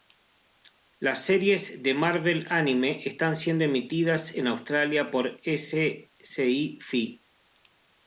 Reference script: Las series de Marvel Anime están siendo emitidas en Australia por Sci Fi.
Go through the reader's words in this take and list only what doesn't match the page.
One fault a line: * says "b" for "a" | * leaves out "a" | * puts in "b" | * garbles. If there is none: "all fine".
all fine